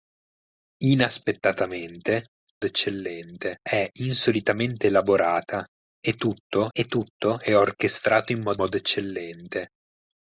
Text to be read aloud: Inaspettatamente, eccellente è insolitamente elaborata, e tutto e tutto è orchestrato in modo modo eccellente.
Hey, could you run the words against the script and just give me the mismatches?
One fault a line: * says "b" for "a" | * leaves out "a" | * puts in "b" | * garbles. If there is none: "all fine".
all fine